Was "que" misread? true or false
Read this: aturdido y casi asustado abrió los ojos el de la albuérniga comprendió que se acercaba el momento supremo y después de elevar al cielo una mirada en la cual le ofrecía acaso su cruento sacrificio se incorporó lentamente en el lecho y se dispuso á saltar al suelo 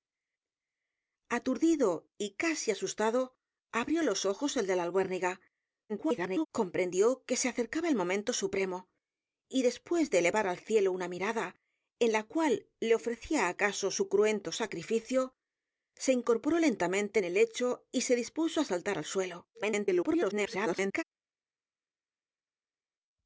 false